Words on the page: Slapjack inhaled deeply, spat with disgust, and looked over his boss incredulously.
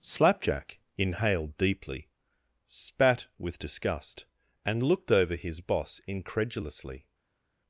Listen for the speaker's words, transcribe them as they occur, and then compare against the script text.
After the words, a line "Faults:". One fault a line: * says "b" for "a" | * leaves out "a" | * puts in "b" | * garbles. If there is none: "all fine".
Slapjack inhaled deeply, spat with disgust, and looked over his boss incredulously.
Faults:
all fine